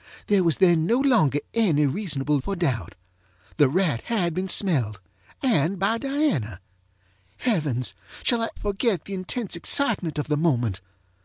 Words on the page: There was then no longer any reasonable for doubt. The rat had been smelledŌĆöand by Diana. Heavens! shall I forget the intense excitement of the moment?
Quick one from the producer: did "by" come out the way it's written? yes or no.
yes